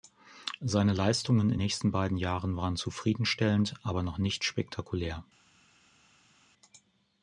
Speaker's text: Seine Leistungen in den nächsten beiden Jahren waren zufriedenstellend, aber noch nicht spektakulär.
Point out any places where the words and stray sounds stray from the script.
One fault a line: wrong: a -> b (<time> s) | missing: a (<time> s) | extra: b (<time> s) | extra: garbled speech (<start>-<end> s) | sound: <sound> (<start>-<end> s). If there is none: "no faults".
missing: den (1.6 s)